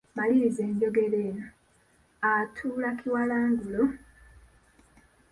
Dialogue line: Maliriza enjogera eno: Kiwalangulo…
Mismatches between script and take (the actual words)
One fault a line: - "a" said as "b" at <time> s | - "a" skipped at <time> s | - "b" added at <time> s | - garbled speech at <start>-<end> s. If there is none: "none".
- "Atuula" added at 2.3 s